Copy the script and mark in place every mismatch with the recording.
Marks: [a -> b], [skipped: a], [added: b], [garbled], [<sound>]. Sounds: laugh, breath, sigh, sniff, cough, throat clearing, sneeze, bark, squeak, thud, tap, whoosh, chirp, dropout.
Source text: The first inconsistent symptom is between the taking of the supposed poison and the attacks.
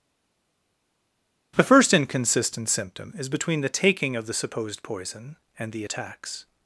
The first inconsistent symptom is between the taking of the supposed poison and the attacks.